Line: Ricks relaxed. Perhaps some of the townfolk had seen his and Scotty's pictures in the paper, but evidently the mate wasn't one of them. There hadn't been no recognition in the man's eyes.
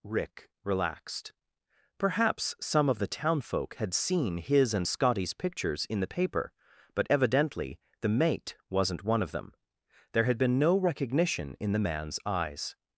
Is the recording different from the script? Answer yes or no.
yes